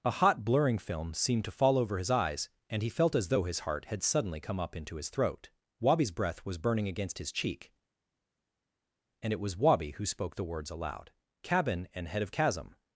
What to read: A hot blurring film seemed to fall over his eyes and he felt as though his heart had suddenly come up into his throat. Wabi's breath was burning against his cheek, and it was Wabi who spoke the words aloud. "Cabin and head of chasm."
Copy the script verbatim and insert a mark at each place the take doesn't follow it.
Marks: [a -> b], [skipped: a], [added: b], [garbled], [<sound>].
A hot blurring film seemed to fall over his eyes and he felt as though his heart had suddenly come up into his throat. Wabi's breath was burning against his cheek, and it was Wabi who spoke the words aloud. "Cabin and head of chasm."